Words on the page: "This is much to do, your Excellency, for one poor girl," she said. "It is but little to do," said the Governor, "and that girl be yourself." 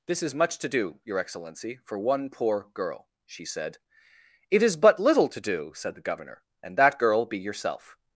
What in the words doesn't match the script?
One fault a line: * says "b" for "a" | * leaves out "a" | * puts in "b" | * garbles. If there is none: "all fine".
all fine